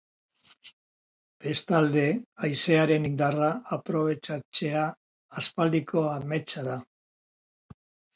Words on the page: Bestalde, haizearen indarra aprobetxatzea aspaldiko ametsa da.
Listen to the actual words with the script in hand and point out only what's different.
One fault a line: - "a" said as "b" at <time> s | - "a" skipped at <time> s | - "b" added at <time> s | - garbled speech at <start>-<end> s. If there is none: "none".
none